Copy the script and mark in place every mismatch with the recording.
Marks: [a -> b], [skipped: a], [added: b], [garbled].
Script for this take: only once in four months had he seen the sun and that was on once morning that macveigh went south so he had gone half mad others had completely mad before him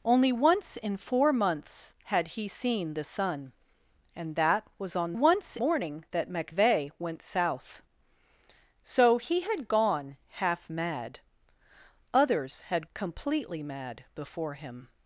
only once in four months had he seen the sun and that was on once morning that macveigh went south so he had gone half mad others had completely mad before him